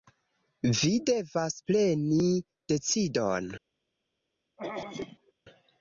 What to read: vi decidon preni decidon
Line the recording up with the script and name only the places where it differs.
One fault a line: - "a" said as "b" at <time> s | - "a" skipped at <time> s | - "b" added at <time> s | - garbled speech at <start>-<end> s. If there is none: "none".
- "decidon" said as "devas" at 1.1 s